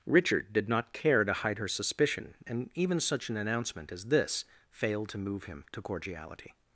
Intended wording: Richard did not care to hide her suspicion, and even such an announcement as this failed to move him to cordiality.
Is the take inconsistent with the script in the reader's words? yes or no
no